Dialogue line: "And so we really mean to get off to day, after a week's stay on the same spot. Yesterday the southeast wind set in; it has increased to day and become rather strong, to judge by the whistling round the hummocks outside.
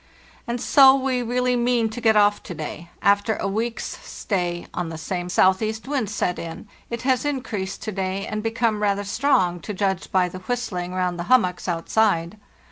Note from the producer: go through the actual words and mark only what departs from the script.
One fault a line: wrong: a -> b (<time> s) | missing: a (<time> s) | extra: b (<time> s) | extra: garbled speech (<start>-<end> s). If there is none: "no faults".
missing: spot Yesterday the (5.3 s)